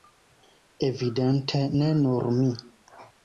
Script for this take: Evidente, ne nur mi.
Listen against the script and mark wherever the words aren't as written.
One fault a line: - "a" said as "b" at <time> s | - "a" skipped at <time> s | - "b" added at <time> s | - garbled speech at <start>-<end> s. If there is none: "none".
none